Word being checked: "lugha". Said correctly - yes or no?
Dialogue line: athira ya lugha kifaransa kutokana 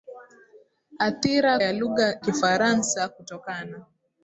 yes